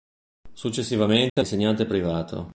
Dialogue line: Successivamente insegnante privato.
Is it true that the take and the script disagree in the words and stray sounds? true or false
true